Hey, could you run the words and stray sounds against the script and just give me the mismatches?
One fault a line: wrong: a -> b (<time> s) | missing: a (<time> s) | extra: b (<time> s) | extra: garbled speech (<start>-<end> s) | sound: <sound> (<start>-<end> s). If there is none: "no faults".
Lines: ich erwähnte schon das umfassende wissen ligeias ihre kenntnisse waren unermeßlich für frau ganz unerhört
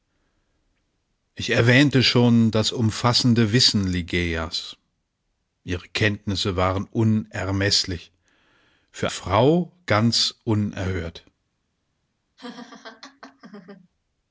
sound: laugh (12.4-13.9 s)